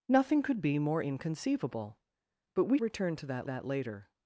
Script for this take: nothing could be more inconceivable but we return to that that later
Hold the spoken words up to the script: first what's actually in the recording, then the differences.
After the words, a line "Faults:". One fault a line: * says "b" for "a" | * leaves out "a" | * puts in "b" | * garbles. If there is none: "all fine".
nothing could be more inconceivable but we return to that that later
Faults:
all fine